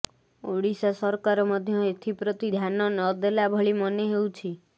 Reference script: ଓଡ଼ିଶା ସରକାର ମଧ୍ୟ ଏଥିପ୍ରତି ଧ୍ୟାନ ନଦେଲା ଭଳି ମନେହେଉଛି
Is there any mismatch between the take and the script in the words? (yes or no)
no